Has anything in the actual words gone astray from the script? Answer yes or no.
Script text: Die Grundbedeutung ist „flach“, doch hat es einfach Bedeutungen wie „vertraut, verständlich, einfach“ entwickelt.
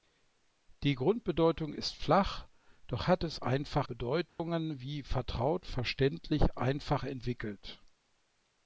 no